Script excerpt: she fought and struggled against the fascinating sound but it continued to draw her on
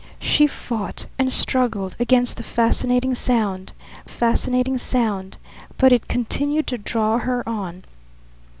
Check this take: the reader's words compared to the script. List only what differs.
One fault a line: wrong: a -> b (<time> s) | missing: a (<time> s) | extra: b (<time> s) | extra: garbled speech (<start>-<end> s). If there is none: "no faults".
extra: fascinating sound (4.1 s)